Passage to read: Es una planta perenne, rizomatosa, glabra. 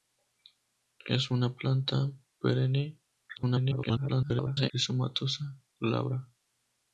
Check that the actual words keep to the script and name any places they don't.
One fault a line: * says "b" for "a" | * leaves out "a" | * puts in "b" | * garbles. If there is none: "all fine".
* garbles